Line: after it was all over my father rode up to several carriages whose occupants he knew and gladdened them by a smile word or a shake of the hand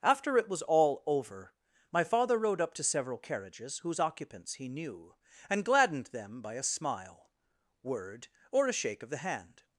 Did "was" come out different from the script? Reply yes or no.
no